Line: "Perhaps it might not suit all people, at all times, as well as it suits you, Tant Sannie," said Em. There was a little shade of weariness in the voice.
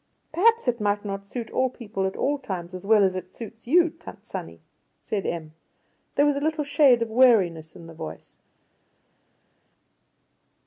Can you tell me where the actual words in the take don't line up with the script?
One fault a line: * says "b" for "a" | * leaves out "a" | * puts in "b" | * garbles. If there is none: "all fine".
all fine